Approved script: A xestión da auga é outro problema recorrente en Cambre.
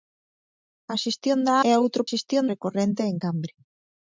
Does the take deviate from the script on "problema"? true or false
true